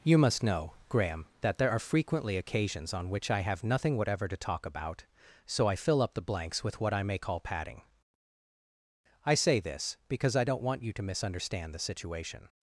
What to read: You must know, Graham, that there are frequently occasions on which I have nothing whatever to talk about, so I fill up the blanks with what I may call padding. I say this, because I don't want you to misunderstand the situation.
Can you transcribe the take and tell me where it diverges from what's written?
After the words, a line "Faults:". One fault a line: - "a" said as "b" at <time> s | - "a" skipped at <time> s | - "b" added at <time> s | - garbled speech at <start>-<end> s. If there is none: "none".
You must know, Graham, that there are frequently occasions on which I have nothing whatever to talk about, so I fill up the blanks with what I may call padding. I say this, because I don't want you to misunderstand the situation.
Faults:
none